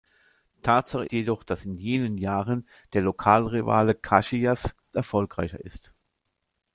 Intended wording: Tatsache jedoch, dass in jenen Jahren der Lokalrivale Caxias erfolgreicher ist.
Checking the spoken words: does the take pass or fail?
pass